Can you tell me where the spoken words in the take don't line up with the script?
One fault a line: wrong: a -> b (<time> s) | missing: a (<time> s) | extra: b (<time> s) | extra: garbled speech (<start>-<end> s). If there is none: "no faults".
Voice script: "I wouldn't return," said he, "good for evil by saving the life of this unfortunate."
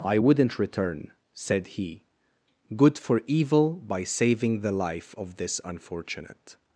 no faults